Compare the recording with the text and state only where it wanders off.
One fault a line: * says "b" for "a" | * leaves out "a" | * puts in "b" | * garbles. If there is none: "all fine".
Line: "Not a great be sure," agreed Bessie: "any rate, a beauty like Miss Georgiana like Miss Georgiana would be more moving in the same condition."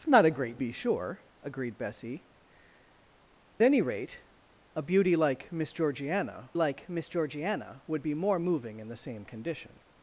all fine